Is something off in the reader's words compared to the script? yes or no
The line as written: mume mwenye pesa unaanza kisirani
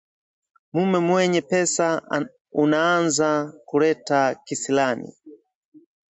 yes